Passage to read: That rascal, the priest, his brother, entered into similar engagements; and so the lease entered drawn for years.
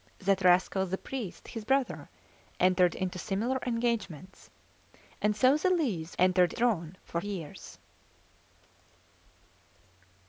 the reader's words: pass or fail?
pass